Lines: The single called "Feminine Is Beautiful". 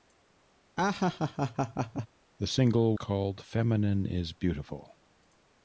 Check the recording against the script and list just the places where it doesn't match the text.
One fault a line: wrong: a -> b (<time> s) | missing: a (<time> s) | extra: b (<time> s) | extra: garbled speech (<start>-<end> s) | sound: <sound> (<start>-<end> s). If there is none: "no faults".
sound: laugh (0.8-2.1 s)